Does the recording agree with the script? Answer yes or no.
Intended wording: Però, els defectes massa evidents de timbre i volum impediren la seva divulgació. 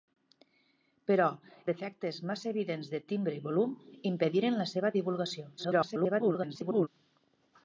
no